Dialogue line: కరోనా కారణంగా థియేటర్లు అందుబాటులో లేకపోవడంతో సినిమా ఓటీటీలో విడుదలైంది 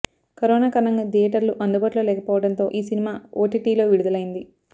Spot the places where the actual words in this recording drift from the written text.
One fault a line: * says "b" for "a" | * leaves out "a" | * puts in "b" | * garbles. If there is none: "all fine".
* puts in "ఈ"